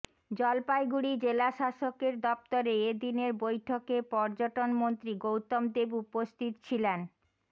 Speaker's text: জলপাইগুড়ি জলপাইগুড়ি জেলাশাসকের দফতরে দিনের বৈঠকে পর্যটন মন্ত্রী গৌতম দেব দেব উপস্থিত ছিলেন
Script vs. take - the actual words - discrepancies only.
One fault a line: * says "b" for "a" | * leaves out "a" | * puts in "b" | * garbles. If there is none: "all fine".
* leaves out "জলপাইগুড়ি"
* puts in "এ"
* leaves out "দেব"